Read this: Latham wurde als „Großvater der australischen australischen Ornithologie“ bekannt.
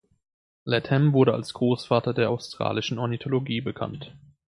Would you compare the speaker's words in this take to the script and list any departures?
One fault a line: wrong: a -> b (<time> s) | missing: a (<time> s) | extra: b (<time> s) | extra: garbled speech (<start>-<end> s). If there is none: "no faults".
missing: australischen (3.0 s)